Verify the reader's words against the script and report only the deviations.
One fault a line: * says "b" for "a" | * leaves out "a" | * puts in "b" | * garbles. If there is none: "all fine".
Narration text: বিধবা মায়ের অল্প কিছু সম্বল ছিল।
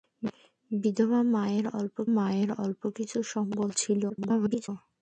* puts in "মায়ের অল্প"
* garbles